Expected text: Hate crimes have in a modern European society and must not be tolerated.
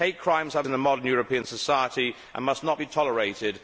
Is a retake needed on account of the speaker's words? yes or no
no